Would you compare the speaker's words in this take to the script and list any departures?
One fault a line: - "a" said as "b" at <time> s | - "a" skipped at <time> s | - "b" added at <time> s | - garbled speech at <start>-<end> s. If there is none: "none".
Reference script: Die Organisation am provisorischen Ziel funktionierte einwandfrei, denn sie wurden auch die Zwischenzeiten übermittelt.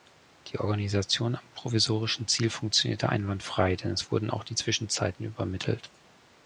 - "sie" said as "es" at 3.9 s